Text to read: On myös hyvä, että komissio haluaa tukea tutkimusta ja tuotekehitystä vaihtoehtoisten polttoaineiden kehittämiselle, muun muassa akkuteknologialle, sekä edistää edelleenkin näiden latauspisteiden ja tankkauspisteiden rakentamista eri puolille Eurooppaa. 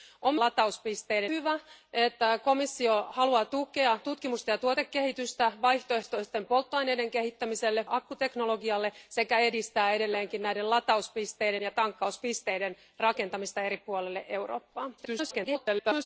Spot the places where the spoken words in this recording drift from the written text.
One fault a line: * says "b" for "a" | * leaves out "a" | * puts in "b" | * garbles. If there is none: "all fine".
* says "latauspisteiden" for "myös"
* leaves out "muun muassa"
* garbles